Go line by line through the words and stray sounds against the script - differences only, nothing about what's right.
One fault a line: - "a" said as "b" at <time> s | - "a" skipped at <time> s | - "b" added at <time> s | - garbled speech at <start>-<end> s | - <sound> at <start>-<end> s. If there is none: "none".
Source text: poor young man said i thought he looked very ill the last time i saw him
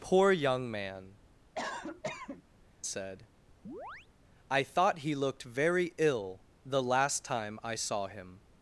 - cough at 1.5-2.4 s
- chirp at 3.6-4.1 s